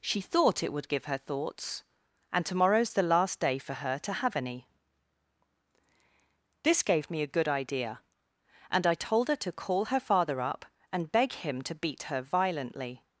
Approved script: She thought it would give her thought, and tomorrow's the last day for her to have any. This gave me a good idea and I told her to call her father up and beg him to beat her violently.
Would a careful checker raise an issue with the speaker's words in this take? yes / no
yes